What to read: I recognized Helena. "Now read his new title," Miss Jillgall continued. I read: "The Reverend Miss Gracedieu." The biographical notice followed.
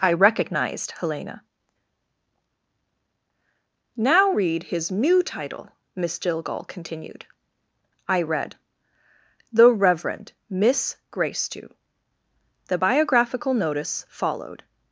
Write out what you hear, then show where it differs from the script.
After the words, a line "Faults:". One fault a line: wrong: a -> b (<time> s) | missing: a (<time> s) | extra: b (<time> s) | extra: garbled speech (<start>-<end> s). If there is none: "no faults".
I recognized Helena. "Now read his new title," Miss Jillgall continued. I read: "The Reverend Miss Gracedieu." The biographical notice followed.
Faults:
no faults